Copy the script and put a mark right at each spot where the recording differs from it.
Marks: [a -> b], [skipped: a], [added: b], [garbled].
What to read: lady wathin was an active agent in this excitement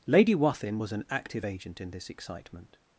lady wathin was an active agent in this excitement